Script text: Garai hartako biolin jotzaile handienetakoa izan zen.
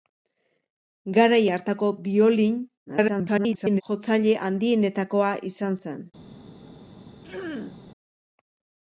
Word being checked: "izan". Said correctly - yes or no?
yes